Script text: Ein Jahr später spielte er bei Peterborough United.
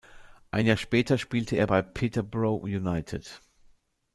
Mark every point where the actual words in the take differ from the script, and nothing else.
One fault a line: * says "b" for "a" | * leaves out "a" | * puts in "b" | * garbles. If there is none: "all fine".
all fine